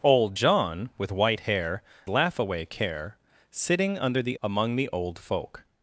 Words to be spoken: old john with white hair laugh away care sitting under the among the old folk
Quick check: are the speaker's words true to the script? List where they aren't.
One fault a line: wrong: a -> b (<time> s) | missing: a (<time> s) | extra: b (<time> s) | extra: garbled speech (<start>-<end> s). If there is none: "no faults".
no faults